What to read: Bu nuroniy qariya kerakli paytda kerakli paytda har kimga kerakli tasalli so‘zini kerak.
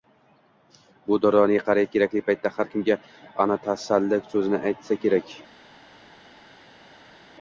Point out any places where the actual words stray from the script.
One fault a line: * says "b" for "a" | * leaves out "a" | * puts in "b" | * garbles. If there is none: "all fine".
* leaves out "kerakli paytda"
* says "ana" for "kerakli"
* puts in "aytsa"